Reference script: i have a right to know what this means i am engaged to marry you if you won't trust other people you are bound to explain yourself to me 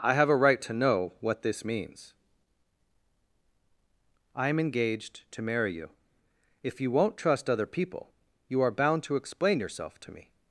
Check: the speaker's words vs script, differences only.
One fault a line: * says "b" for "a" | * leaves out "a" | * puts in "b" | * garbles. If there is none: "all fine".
all fine